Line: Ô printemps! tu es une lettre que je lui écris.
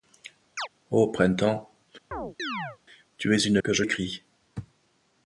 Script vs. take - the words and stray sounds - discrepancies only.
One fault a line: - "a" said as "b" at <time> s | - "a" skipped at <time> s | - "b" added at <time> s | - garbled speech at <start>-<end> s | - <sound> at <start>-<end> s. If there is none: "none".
- chirp at 0.6-0.7 s
- chirp at 2.1-2.8 s
- "lettre" skipped at 3.6 s
- "lui" skipped at 3.8 s